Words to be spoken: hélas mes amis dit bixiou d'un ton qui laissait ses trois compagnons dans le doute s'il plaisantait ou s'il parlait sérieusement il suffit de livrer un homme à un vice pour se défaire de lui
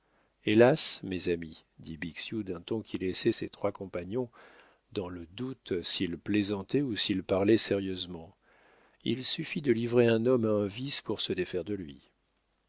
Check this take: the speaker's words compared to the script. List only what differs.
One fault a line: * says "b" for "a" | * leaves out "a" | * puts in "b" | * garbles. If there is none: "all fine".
all fine